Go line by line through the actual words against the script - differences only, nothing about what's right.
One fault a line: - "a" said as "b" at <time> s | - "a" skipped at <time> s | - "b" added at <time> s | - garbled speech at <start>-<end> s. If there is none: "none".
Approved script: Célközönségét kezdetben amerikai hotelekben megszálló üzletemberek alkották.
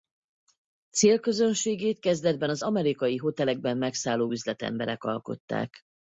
- "az" added at 2.5 s